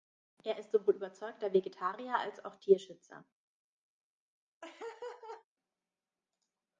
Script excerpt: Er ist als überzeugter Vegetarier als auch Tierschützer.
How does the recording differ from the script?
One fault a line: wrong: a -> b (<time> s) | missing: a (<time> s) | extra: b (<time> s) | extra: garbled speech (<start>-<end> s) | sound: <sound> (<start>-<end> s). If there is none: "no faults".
wrong: als -> sowohl (0.7 s)
sound: laugh (4.6-5.5 s)